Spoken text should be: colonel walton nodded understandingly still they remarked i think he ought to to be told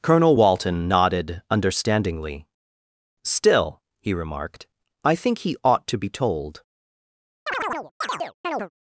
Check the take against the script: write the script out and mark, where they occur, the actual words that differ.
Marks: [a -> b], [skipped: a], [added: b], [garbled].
colonel walton nodded understandingly still [they -> he] remarked i think he ought to [skipped: to] be told